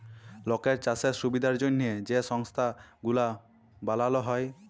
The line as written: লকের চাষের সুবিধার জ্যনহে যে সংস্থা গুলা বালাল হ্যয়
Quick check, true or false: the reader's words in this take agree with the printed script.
true